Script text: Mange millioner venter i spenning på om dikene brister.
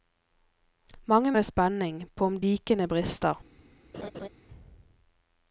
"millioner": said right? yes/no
no